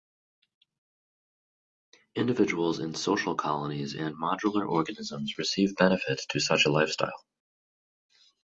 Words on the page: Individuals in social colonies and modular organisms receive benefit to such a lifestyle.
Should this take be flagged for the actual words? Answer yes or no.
no